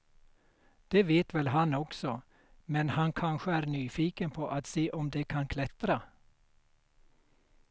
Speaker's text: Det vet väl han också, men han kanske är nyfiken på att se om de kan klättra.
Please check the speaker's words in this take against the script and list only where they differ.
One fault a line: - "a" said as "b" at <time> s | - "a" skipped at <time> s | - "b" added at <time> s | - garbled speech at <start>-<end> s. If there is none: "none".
none